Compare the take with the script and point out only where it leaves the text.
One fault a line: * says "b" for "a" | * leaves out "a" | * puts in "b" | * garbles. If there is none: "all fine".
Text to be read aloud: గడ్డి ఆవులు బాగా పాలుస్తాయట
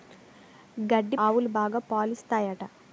all fine